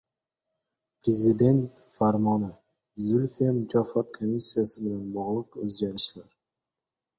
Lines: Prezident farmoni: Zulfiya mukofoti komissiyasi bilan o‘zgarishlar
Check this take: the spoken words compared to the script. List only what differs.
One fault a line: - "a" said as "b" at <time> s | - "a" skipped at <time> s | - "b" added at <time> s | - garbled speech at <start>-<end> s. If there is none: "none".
- "bog‘liq" added at 5.2 s